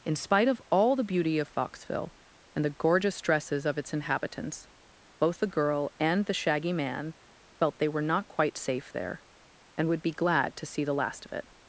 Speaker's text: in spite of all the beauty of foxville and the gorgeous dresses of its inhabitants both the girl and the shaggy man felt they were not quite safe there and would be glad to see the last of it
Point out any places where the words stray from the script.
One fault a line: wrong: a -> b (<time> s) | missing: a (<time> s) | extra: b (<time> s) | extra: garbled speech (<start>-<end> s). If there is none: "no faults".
no faults